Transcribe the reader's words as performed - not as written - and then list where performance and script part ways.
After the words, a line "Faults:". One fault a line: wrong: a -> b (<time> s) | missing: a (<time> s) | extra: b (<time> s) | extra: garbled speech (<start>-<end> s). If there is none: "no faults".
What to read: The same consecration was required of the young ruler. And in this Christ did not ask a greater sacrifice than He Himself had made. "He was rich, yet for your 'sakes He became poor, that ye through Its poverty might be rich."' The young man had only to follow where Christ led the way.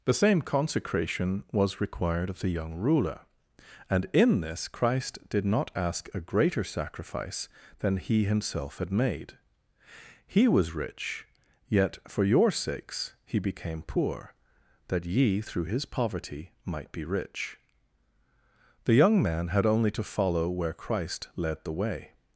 The same consecration was required of the young ruler. And in this Christ did not ask a greater sacrifice than He Himself had made. "He was rich, yet for your 'sakes He became poor, that ye through His poverty might be rich."' The young man had only to follow where Christ led the way.
Faults:
wrong: Its -> His (15.6 s)